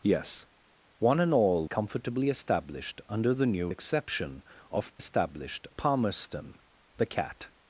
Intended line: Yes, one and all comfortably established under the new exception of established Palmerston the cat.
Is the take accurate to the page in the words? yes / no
yes